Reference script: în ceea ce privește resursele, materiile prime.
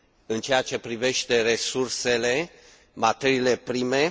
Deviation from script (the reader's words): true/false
false